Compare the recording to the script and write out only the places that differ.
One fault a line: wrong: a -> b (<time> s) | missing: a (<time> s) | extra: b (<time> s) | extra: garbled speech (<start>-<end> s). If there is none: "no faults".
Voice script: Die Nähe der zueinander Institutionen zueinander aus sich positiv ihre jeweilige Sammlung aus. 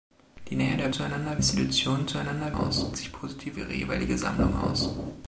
no faults